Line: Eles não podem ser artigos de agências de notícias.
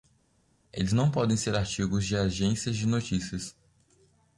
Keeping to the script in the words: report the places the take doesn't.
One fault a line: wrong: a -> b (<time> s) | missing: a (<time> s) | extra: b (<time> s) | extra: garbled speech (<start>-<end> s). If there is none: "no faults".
no faults